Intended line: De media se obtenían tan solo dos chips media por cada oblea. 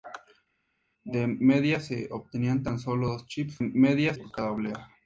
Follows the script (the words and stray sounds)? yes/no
yes